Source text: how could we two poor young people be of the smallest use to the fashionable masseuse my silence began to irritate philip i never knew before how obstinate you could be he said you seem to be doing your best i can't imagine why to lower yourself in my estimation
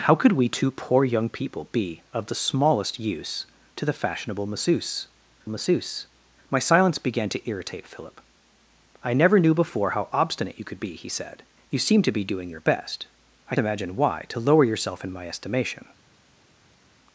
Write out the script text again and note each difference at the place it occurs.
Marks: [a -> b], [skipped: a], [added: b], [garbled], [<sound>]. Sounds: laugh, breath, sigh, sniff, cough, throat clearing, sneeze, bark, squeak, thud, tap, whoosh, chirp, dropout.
how could we two poor young people be of the smallest use to the fashionable masseuse [added: masseuse] my silence began to irritate philip i never knew before how obstinate you could be he said you seem to be doing your best i [skipped: can't] imagine why to lower yourself in my estimation